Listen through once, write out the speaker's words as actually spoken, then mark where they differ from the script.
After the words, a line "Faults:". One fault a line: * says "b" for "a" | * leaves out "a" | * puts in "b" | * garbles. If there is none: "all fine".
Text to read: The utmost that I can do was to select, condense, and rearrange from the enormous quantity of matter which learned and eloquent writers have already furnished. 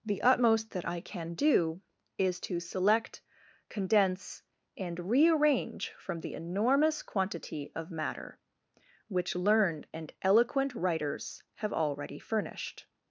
The utmost that I can do is to select, condense, and rearrange from the enormous quantity of matter which learned and eloquent writers have already furnished.
Faults:
* says "is" for "was"